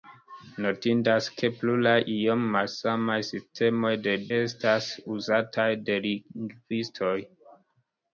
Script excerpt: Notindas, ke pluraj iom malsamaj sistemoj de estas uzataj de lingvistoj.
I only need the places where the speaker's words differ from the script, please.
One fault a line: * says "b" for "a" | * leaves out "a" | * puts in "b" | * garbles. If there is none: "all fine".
all fine